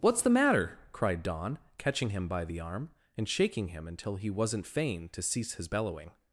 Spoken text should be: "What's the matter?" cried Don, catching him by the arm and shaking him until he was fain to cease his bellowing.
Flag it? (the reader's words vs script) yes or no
yes